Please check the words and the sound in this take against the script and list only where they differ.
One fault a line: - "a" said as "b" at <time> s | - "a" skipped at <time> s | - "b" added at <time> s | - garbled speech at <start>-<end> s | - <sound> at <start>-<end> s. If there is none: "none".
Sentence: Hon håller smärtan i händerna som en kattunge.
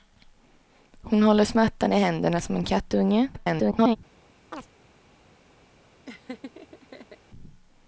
- garbled speech at 3.3-4.0 s
- chirp at 4.5-4.7 s
- laugh at 6.0-7.2 s